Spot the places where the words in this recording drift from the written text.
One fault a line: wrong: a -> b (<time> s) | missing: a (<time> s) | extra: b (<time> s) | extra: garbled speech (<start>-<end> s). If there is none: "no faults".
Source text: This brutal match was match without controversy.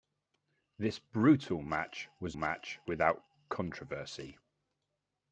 no faults